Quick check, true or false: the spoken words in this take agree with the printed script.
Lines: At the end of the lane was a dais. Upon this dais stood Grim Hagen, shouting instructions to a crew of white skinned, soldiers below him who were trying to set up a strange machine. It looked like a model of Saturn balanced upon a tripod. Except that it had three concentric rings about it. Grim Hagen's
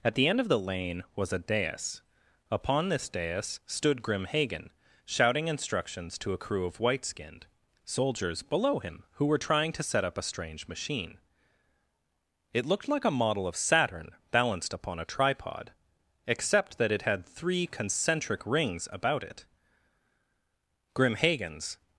true